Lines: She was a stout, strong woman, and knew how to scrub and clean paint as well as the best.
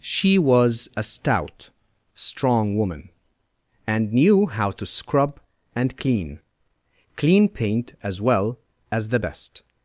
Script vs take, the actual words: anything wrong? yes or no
yes